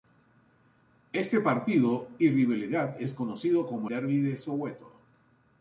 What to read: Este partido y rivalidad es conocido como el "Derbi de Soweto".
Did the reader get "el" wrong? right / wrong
wrong